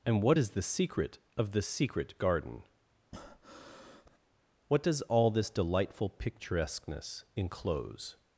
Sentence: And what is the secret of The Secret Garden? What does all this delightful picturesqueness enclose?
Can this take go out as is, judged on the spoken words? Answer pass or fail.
pass